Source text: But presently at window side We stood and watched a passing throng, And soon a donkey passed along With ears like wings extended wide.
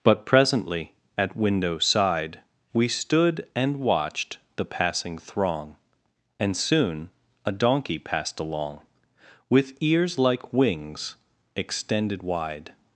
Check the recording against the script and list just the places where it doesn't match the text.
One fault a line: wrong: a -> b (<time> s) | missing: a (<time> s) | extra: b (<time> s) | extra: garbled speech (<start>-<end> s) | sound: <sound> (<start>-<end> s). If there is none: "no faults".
wrong: a -> the (4.5 s)